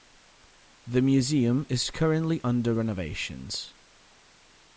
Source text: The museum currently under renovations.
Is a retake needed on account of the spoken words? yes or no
yes